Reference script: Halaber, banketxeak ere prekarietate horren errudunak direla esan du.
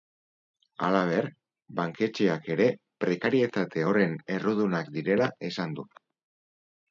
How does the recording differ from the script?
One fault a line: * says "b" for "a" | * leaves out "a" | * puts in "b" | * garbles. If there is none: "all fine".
all fine